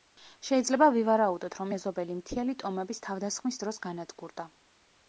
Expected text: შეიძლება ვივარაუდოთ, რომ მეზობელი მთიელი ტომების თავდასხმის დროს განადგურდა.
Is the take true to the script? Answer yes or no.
yes